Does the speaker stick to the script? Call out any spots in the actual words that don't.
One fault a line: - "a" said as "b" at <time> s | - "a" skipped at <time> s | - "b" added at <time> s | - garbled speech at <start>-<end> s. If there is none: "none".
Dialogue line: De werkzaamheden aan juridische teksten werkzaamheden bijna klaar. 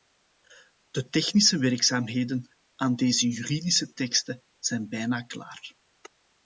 - "technische" added at 1.1 s
- "deze" added at 3.0 s
- "werkzaamheden" said as "zijn" at 4.6 s